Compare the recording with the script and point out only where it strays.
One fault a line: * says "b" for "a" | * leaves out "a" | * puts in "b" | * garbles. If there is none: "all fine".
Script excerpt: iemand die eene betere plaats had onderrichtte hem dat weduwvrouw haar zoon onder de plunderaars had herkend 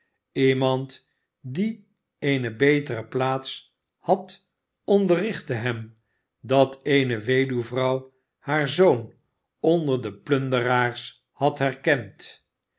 * puts in "eene"